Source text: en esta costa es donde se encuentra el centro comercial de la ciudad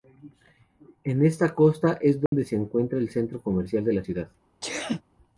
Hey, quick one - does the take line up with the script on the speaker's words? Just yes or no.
yes